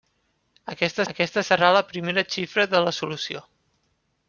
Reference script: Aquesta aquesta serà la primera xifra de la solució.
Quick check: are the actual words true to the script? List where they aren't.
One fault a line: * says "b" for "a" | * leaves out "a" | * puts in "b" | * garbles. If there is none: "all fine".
all fine